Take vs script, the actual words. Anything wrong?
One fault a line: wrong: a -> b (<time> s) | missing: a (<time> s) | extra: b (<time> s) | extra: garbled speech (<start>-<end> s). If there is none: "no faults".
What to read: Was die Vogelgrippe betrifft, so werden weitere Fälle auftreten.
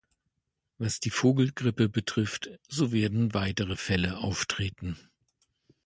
no faults